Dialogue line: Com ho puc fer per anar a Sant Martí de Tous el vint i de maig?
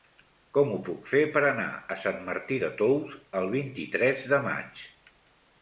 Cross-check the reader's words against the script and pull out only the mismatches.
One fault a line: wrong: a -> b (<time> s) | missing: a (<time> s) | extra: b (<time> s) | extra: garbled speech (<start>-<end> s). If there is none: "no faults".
extra: tres (4.0 s)